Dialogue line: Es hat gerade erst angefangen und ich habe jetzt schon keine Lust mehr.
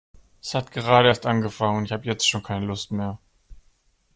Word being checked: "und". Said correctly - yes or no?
yes